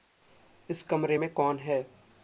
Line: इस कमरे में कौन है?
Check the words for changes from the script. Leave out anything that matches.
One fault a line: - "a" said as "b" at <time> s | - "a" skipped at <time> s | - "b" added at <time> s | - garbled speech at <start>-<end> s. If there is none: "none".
none